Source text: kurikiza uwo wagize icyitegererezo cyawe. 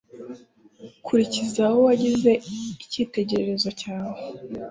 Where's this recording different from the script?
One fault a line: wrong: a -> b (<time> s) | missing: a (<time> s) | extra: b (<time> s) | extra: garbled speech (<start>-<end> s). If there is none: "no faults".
no faults